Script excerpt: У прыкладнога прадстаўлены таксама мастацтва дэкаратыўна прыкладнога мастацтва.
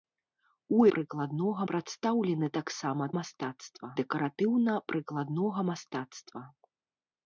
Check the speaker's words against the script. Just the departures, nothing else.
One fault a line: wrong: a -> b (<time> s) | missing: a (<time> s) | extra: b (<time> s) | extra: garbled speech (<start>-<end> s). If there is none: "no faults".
no faults